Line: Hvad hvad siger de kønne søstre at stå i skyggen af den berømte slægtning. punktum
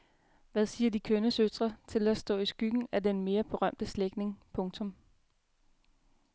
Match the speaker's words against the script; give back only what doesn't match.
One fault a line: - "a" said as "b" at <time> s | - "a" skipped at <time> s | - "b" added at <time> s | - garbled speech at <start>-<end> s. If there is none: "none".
- "hvad" skipped at 0.7 s
- "til" added at 1.9 s
- "mere" added at 3.2 s